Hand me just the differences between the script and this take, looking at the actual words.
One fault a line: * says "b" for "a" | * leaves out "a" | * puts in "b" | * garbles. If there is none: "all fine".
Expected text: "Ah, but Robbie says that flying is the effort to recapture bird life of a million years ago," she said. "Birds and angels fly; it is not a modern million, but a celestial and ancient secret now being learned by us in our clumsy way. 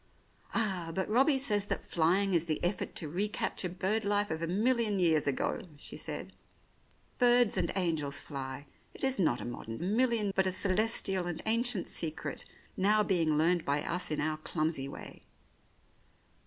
all fine